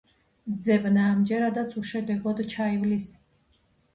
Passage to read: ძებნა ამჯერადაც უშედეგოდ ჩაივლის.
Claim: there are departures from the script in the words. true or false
false